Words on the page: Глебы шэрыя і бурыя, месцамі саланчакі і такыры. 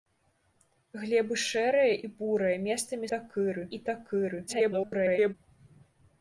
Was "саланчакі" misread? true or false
true